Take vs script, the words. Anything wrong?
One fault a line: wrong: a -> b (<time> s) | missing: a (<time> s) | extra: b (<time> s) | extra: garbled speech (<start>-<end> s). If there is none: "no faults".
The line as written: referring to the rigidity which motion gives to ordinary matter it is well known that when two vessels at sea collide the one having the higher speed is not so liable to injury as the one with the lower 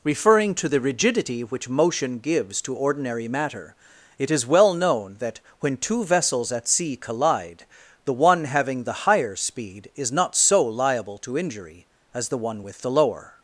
no faults